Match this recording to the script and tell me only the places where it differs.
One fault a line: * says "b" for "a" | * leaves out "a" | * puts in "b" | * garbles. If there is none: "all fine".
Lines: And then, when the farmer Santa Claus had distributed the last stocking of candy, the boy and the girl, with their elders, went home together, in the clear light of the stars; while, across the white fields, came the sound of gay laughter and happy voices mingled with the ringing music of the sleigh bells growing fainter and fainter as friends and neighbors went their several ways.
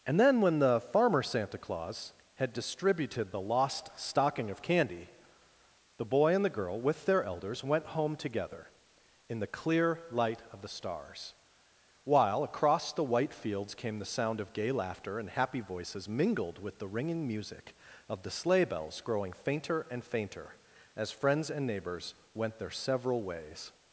* says "lost" for "last"